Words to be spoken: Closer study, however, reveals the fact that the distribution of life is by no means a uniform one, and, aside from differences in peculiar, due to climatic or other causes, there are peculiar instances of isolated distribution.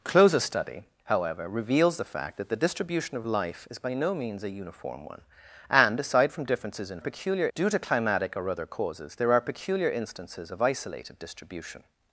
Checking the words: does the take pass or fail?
pass